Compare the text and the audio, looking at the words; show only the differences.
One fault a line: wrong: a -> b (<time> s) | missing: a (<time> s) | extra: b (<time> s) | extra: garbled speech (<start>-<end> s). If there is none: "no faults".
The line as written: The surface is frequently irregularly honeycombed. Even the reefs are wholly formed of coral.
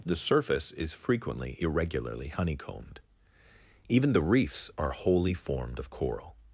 no faults